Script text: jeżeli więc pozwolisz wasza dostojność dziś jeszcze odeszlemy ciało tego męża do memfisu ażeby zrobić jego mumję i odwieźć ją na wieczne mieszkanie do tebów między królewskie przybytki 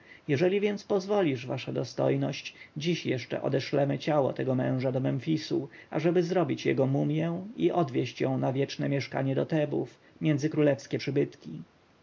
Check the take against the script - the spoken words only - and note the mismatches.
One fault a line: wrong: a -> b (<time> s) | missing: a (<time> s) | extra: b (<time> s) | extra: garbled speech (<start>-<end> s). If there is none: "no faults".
no faults